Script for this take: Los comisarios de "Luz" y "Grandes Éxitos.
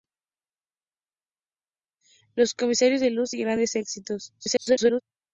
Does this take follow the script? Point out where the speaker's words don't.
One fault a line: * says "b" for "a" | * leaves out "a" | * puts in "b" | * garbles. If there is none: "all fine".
* garbles